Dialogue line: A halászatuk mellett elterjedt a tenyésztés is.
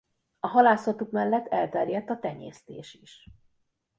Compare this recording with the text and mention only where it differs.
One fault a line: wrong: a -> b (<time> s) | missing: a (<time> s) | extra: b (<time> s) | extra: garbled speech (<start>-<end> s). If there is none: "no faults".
no faults